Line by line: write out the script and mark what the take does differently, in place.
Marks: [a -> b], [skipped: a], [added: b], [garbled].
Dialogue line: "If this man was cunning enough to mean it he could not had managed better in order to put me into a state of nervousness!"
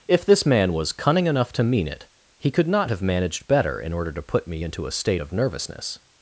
"If this man was cunning enough to mean it he could not [had -> have] managed better in order to put me into a state of nervousness!"